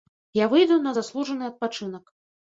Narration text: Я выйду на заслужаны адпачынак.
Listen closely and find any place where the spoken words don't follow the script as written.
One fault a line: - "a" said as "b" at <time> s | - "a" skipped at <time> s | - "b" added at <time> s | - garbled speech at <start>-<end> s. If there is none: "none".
none